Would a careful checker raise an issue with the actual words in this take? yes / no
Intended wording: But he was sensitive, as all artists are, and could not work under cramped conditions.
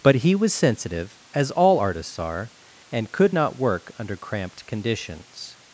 no